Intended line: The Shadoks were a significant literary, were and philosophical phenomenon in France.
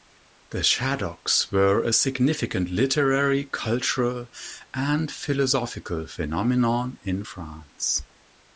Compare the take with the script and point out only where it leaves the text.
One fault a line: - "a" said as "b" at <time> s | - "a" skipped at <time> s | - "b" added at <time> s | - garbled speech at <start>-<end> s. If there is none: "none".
- "were" said as "cultural" at 3.4 s